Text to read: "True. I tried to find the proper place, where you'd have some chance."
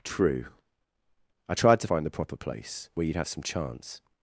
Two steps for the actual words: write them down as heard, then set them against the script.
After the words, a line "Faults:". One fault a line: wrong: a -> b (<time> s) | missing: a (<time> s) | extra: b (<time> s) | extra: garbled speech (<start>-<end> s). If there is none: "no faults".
"True. I tried to find the proper place, where you'd have some chance."
Faults:
no faults